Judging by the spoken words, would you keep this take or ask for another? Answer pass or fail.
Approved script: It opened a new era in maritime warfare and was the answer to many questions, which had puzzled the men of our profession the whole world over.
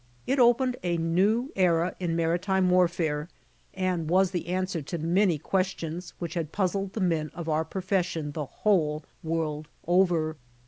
pass